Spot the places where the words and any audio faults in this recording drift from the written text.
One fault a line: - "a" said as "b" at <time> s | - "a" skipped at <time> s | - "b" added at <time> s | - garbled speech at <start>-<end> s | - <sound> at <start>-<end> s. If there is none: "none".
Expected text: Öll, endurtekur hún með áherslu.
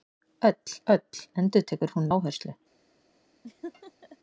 - "öll" added at 0.9 s
- "með" skipped at 2.1 s
- laugh at 3.4-4.2 s